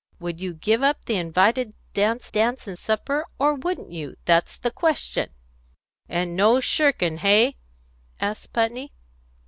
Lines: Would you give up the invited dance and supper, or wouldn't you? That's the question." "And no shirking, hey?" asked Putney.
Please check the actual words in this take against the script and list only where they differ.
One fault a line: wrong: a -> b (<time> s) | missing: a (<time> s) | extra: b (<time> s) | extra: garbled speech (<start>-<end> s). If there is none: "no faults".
extra: dance (2.3 s)